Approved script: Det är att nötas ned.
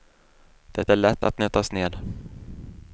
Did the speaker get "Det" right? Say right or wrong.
right